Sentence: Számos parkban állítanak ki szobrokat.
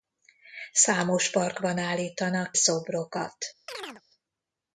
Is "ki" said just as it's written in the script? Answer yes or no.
no